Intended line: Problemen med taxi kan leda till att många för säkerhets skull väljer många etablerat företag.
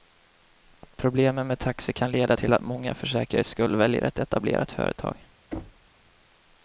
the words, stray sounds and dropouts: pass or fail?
fail